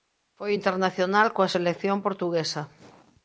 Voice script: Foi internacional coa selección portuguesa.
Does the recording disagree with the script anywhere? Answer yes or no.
no